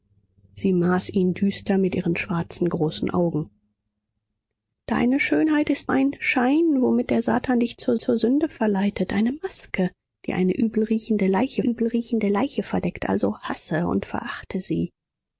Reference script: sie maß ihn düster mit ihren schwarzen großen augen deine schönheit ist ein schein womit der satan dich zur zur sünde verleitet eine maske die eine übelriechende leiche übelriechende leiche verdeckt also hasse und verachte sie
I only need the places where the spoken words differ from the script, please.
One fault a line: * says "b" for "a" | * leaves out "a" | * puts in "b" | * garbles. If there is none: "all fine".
all fine